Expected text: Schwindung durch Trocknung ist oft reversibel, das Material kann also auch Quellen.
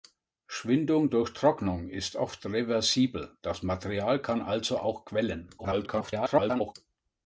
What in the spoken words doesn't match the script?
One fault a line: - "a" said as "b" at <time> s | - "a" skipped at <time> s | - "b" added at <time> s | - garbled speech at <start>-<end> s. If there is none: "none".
- garbled speech at 5.6-6.7 s